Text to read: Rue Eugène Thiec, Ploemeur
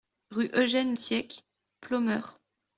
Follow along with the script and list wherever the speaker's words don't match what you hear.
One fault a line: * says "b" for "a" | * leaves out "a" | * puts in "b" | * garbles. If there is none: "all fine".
all fine